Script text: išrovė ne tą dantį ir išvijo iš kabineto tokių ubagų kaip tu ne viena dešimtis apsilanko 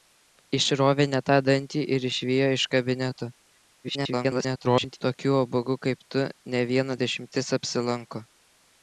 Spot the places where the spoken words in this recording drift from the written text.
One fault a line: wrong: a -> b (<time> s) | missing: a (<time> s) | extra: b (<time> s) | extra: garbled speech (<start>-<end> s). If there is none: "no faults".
extra: garbled speech (3.8-5.0 s)